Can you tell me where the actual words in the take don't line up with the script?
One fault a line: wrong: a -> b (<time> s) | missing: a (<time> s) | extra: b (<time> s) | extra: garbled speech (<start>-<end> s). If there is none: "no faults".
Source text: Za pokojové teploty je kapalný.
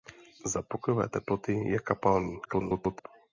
extra: garbled speech (2.4-3.1 s)